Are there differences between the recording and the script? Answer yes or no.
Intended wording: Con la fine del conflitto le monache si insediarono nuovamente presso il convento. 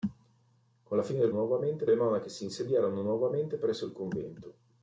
yes